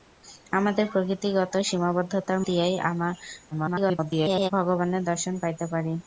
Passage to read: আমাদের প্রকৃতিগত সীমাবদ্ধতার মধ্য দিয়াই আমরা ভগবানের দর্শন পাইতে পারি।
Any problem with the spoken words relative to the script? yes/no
yes